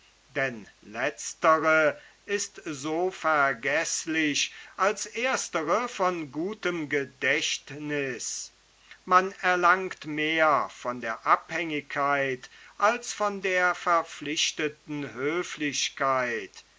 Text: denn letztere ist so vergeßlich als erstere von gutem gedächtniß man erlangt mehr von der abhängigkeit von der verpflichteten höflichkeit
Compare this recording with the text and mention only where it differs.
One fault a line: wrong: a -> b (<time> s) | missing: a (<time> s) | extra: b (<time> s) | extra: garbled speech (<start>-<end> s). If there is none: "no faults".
extra: als (12.8 s)